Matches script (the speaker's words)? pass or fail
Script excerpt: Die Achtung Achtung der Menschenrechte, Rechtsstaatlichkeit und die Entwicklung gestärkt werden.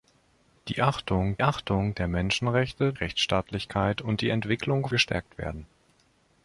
pass